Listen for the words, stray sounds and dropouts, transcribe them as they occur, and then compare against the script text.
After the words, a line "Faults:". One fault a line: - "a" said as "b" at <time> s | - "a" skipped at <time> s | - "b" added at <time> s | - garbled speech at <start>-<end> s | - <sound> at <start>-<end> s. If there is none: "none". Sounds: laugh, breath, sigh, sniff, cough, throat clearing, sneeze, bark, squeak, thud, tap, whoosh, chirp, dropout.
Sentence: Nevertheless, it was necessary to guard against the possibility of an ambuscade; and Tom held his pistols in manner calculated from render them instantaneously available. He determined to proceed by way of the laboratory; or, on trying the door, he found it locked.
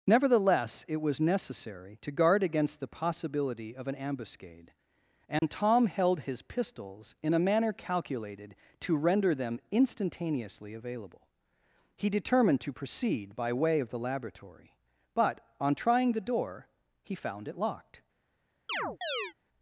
Nevertheless, it was necessary to guard against the possibility of an ambuscade; and Tom held his pistols in a manner calculated to render them instantaneously available. He determined to proceed by way of the laboratory; but, on trying the door, he found it locked.
Faults:
- dropout at 5.4-5.4 s
- "a" added at 7.3 s
- "from" said as "to" at 8.8 s
- "or" said as "but" at 15.1 s
- chirp at 18.7-19.3 s